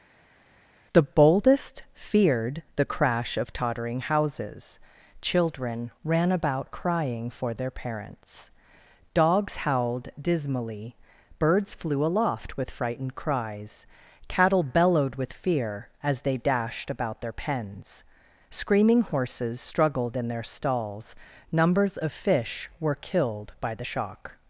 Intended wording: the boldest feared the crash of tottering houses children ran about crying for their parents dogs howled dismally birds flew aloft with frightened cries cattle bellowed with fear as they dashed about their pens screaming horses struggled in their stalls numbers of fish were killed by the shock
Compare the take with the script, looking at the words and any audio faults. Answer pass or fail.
pass